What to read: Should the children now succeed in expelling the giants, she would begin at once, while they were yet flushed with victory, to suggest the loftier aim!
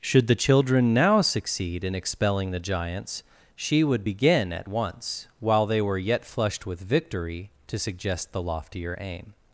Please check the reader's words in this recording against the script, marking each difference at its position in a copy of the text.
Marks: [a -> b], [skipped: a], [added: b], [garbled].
Should the children now succeed in expelling the giants, she would begin at once, while they were yet flushed with victory, to suggest the loftier aim!